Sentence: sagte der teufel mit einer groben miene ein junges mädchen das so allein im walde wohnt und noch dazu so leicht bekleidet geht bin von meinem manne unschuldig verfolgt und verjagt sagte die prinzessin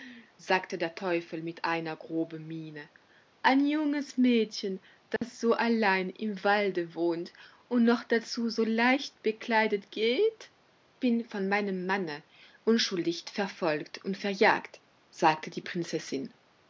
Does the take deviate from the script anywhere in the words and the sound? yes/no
yes